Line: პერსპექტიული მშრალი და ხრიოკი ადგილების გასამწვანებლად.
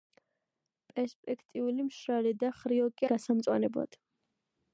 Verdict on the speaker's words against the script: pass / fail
fail